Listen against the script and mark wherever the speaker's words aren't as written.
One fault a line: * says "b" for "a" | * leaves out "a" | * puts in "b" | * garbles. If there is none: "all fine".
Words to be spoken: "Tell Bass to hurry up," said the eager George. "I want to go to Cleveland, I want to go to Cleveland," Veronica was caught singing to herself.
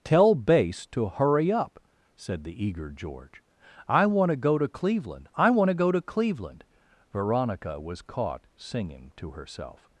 all fine